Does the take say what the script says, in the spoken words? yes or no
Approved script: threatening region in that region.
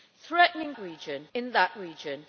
yes